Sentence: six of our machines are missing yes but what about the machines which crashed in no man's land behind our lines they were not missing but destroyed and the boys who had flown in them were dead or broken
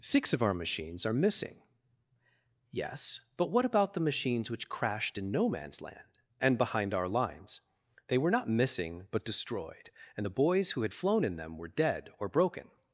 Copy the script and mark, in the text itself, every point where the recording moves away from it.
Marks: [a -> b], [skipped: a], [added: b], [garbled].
six of our machines are missing yes but what about the machines which crashed in no man's land [added: and] behind our lines they were not missing but destroyed and the boys who had flown in them were dead or broken